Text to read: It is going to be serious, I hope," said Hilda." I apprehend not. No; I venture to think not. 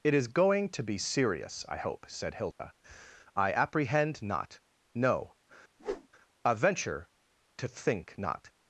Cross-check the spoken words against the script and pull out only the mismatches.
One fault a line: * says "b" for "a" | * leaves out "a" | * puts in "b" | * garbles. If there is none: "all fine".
all fine